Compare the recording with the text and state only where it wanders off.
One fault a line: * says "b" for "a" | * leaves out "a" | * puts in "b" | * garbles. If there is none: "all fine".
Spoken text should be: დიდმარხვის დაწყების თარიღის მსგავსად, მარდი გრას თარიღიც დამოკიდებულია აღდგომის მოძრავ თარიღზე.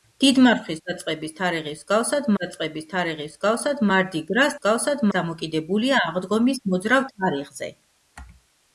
* puts in "დაწყების თარიღის მსგავსად"
* says "მსგავსად" for "თარიღიც"